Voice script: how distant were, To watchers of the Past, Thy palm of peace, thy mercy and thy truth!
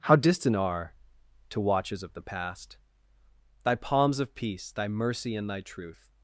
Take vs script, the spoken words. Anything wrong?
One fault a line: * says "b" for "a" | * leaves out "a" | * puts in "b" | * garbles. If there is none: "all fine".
* says "are" for "were"
* says "palms" for "palm"